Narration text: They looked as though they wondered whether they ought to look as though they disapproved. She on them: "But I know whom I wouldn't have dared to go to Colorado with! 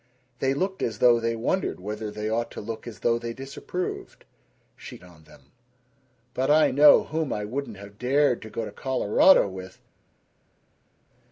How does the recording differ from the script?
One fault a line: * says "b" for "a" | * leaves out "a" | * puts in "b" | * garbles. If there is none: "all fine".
all fine